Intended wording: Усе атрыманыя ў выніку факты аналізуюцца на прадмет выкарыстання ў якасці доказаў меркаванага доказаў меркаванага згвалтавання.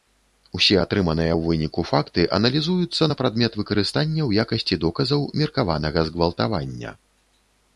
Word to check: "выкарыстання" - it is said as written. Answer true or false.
true